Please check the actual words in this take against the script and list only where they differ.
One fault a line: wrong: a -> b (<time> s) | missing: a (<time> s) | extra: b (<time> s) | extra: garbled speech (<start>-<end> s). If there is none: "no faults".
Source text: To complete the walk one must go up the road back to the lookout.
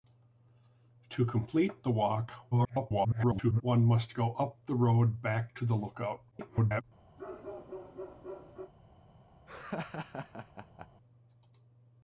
extra: garbled speech (2.5-3.6 s)
extra: garbled speech (6.3-6.8 s)